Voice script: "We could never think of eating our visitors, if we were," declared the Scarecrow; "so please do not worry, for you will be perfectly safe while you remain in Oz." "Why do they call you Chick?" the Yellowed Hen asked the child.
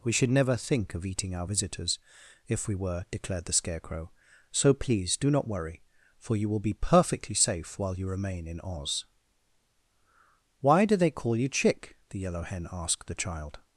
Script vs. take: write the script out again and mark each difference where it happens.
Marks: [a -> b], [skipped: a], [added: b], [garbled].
"We [could -> should] never think of eating our visitors, if we were," declared the Scarecrow; "so please do not worry, for you will be perfectly safe while you remain in Oz." "Why do they call you Chick?" the [Yellowed -> Yellow] Hen asked the child.